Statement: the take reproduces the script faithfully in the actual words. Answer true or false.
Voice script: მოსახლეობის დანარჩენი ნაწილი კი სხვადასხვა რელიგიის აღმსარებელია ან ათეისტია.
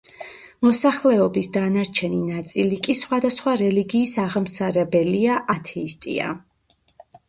false